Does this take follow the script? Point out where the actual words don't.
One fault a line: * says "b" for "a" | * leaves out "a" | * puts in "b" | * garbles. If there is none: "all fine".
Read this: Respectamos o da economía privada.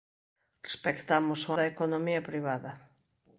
all fine